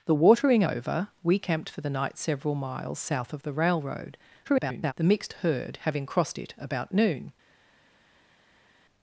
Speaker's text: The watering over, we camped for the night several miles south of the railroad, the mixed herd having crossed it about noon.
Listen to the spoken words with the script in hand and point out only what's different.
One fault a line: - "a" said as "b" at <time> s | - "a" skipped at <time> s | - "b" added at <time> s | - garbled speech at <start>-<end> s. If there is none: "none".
- garbled speech at 4.4-4.9 s